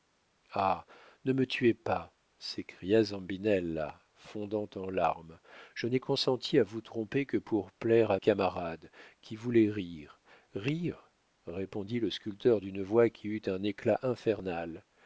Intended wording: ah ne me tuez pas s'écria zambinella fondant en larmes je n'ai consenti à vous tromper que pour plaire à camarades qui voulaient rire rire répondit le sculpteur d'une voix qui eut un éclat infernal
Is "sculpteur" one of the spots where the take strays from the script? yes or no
no